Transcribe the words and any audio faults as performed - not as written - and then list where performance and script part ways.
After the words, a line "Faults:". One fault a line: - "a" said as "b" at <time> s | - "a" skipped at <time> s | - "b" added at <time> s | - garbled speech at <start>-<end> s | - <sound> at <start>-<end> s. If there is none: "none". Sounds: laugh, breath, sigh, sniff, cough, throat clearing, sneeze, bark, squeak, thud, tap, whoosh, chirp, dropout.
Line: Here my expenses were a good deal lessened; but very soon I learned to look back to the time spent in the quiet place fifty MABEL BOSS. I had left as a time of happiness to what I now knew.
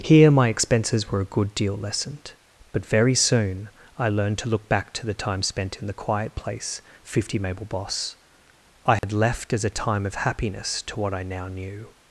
Here my expenses were a good deal lessened; but very soon I learned to look back to the time spent in the quiet place fifty MABEL BOSS. I had left as a time of happiness to what I now knew.
Faults:
- dropout at 9.0-9.0 s